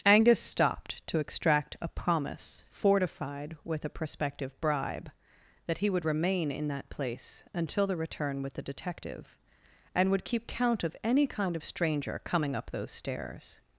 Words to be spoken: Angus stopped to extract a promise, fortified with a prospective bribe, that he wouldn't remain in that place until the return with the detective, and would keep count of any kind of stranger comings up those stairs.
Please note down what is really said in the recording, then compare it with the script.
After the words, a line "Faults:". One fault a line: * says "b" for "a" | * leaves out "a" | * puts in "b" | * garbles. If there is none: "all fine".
Angus stopped to extract a promise, fortified with a prospective bribe, that he would remain in that place until the return with the detective, and would keep count of any kind of stranger coming up those stairs.
Faults:
* says "would" for "wouldn't"
* says "coming" for "comings"